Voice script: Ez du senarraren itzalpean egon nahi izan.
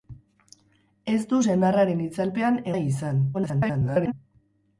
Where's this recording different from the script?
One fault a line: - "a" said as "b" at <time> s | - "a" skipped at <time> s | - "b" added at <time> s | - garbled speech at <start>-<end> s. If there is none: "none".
- "egon" skipped at 2.6 s
- garbled speech at 3.3-4.1 s